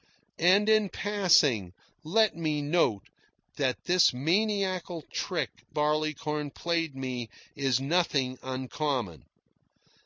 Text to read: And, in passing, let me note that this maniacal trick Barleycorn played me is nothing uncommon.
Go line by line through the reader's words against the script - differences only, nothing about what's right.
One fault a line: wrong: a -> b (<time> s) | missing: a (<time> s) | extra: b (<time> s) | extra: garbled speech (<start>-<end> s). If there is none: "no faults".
no faults